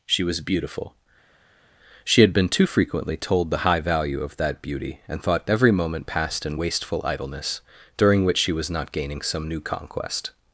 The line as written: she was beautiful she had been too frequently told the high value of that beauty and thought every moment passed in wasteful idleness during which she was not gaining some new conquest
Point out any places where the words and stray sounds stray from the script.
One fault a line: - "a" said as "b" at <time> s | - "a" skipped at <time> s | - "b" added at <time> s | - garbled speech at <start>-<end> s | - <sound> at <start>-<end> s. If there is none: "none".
none